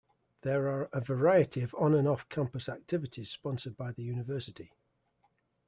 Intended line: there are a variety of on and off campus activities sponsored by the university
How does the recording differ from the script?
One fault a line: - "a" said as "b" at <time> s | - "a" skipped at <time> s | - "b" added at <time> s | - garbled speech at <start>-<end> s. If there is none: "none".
none